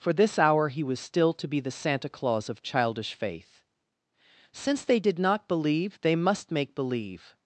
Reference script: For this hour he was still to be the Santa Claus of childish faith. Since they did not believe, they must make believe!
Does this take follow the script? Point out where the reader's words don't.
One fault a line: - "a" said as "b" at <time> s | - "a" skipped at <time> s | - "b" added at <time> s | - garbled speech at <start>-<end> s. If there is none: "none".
none